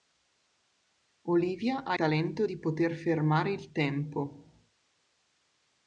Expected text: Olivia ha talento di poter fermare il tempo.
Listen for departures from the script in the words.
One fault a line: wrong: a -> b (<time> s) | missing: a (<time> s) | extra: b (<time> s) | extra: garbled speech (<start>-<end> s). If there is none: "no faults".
no faults